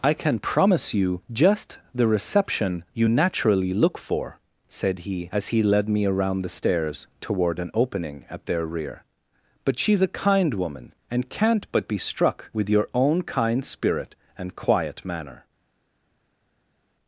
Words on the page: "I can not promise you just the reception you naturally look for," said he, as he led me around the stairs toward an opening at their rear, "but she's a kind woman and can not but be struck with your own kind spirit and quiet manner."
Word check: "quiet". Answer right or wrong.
right